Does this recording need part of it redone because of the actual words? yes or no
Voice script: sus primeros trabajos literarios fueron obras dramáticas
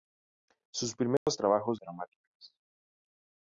yes